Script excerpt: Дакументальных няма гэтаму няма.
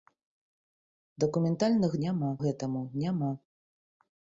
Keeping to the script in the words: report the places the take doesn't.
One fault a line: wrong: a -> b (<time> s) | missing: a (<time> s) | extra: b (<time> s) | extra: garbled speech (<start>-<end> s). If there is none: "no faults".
no faults